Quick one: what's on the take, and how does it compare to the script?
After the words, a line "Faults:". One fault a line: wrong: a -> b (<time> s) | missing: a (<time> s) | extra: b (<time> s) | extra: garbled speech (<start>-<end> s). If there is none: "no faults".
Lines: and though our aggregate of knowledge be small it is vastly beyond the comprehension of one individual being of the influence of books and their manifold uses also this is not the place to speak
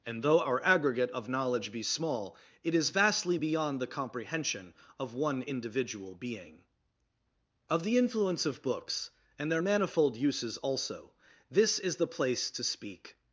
and though our aggregate of knowledge be small it is vastly beyond the comprehension of one individual being of the influence of books and their manifold uses also this is the place to speak
Faults:
missing: not (12.0 s)